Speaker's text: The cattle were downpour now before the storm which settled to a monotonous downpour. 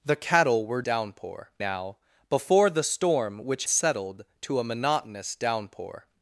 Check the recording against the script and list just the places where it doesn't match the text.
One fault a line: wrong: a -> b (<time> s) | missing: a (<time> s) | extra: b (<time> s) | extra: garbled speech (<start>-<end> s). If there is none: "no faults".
no faults